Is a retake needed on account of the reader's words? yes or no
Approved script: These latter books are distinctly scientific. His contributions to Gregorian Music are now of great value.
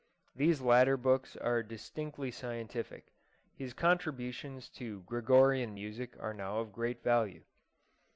no